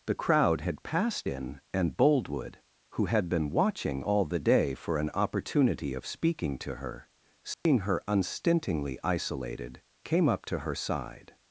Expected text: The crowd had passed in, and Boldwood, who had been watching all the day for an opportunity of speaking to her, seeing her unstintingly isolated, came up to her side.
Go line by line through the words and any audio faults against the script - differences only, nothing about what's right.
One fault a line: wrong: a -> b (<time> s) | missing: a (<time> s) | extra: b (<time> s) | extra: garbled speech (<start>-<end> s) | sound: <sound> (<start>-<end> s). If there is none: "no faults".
sound: dropout (7.5-7.7 s)